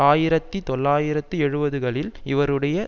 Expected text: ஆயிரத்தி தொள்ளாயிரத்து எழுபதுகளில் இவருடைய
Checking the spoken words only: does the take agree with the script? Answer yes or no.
yes